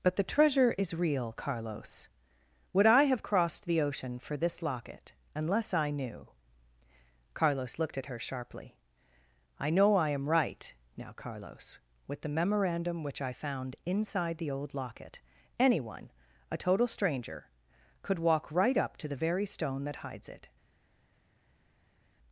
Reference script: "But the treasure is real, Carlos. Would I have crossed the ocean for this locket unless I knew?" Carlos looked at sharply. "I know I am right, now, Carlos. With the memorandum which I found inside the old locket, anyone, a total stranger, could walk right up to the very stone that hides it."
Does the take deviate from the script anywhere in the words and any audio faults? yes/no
yes